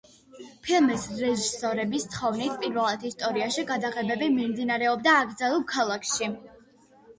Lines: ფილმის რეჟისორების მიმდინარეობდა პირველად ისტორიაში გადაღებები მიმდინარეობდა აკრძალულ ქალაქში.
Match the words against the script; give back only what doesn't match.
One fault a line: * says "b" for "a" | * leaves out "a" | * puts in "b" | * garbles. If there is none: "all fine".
* says "თხოვნით" for "მიმდინარეობდა"